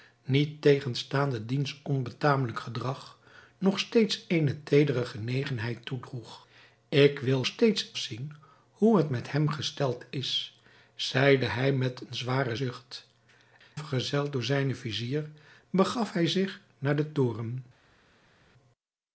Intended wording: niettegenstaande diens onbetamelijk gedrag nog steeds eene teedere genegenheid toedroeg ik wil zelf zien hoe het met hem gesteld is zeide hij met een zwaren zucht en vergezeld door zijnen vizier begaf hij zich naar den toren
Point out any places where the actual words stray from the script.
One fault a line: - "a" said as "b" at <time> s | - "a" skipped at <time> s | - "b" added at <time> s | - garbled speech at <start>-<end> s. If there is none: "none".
- "zelf" said as "steeds" at 7.5 s
- "en" skipped at 13.1 s